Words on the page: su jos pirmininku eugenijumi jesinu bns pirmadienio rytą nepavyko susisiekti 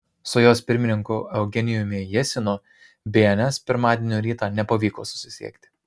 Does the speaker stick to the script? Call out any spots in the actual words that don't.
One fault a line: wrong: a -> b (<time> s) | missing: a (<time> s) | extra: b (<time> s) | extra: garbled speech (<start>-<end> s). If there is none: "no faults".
no faults